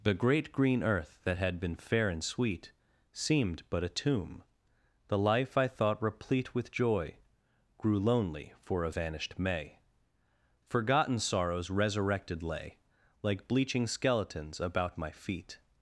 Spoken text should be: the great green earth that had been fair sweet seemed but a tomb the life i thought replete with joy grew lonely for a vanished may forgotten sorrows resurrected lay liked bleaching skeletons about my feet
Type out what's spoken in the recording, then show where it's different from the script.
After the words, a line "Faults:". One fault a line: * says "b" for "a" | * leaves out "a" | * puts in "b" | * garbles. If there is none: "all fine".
the great green earth that had been fair and sweet seemed but a tomb the life i thought replete with joy grew lonely for a vanished may forgotten sorrows resurrected lay like bleaching skeletons about my feet
Faults:
* puts in "and"
* says "like" for "liked"